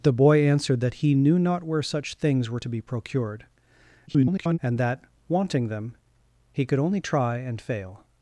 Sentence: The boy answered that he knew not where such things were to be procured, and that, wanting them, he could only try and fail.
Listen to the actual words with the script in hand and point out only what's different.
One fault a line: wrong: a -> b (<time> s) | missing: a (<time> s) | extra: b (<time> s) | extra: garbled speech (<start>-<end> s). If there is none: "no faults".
extra: garbled speech (4.1-4.6 s)